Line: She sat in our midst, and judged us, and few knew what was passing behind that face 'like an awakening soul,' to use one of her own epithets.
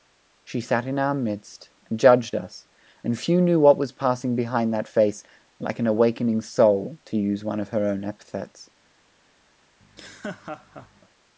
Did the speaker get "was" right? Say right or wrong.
right